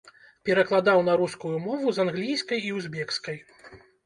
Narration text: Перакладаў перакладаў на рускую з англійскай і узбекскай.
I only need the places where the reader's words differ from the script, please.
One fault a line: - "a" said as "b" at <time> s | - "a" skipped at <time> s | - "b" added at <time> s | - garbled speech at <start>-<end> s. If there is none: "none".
- "перакладаў" skipped at 1.0 s
- "мову" added at 1.7 s